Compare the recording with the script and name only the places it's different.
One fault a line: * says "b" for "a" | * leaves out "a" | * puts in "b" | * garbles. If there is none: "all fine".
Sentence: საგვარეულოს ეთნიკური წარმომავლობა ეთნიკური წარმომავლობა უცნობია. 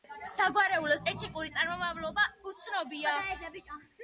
* leaves out "ეთნიკური წარმომავლობა"